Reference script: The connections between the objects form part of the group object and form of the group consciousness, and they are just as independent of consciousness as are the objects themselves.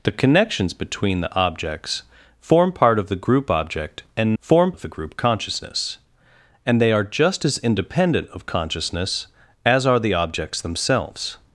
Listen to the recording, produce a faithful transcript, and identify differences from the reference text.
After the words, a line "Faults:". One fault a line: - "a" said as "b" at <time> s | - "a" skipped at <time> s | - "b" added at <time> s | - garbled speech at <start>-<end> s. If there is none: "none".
The connections between the objects form part of the group object and form of the group consciousness, and they are just as independent of consciousness as are the objects themselves.
Faults:
none